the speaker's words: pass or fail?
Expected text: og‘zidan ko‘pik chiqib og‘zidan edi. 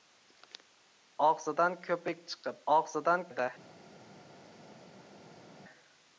pass